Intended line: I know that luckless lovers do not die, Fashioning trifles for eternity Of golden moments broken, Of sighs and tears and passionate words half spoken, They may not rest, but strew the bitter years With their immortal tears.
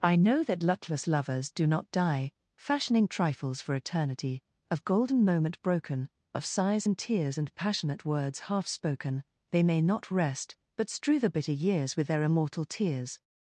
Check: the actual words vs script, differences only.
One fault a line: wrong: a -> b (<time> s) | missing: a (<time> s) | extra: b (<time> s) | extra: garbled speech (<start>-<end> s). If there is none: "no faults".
wrong: moments -> moment (5.2 s)